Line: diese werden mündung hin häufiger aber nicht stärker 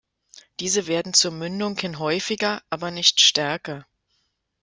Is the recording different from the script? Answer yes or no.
yes